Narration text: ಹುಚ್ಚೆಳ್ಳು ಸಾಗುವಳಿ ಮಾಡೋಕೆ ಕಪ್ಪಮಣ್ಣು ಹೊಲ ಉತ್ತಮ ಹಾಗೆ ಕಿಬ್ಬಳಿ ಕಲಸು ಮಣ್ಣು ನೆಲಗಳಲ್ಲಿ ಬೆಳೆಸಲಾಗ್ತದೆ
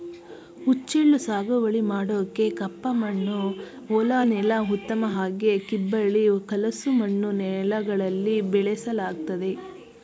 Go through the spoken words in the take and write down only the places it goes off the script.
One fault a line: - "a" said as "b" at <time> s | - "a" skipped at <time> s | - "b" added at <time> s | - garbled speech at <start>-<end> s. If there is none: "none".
- "ನೆಲ" added at 4.3 s